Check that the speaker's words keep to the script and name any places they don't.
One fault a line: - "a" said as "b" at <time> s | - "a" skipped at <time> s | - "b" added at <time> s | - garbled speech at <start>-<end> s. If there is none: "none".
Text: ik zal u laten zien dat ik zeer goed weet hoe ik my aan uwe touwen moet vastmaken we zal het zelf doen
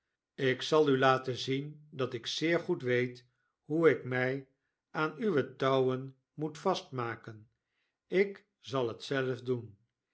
- "we" said as "ik" at 8.1 s